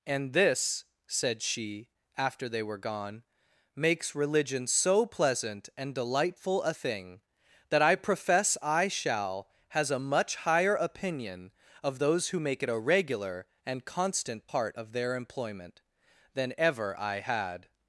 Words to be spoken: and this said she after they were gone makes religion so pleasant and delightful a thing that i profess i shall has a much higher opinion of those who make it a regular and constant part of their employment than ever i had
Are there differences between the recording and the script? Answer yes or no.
no